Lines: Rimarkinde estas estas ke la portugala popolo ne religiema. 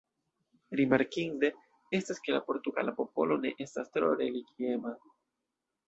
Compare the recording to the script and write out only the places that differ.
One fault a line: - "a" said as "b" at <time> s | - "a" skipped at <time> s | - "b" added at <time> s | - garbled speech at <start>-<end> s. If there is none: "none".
- "estas" skipped at 2.2 s
- "estas tro" added at 3.7 s